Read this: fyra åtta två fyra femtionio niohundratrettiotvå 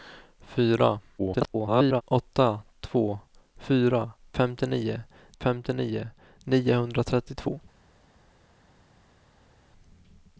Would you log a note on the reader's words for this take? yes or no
yes